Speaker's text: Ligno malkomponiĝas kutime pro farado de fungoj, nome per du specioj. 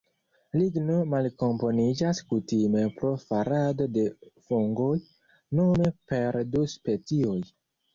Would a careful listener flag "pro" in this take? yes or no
no